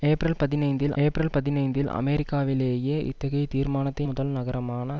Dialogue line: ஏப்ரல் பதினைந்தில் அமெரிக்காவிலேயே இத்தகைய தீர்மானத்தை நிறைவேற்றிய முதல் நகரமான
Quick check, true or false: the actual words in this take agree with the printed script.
false